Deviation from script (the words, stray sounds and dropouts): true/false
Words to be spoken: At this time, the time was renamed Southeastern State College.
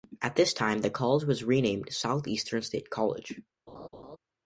true